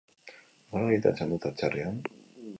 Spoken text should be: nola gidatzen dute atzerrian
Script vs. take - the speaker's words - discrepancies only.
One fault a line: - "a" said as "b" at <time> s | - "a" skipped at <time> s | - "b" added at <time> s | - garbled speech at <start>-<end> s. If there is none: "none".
none